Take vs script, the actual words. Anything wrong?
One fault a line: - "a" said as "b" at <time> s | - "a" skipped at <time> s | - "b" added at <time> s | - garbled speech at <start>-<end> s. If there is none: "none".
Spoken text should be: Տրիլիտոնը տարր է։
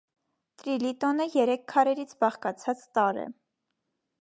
- "երեք քարերից բաղկացած" added at 1.3 s